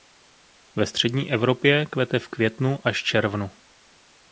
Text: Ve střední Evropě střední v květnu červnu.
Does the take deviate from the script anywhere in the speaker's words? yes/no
yes